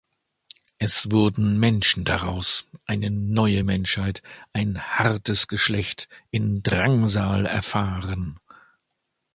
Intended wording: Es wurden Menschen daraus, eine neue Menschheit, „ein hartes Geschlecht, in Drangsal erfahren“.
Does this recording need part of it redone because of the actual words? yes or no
no